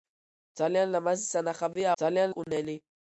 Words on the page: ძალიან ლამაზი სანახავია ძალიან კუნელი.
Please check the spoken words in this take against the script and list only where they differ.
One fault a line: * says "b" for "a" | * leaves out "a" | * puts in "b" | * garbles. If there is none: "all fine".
all fine